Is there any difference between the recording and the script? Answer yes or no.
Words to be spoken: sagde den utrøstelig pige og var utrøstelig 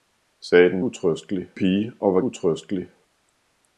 no